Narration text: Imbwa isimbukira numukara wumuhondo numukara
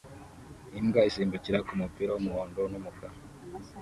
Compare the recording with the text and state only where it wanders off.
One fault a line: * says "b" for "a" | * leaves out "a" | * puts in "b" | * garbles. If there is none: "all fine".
* says "kumupira" for "numukara"